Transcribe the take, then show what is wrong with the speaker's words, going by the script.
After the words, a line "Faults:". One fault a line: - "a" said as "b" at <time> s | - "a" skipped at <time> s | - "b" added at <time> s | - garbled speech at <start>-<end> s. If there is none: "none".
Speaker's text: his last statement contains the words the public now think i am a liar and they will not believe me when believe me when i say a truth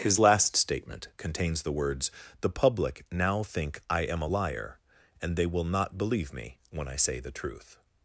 his last statement contains the words the public now think i am a liar and they will not believe me when i say the truth
Faults:
- "believe me when" skipped at 6.9 s
- "a" said as "the" at 7.2 s